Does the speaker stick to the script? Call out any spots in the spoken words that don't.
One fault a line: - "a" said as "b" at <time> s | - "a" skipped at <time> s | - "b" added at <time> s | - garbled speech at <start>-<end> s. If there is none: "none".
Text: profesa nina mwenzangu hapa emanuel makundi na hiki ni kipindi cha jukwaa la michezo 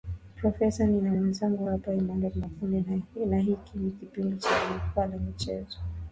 none